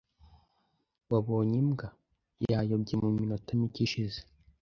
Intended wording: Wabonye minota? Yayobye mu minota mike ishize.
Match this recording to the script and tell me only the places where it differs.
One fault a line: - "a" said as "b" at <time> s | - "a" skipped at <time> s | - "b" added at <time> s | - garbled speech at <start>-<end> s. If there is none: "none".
- "minota" said as "imbwa" at 1.6 s